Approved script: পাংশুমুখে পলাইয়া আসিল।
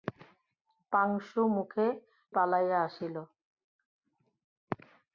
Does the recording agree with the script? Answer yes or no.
yes